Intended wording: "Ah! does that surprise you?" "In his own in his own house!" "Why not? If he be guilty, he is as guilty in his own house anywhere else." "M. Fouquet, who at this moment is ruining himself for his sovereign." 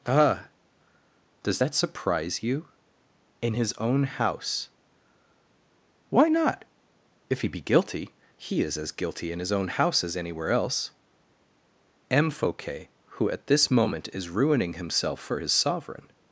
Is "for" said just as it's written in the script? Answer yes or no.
yes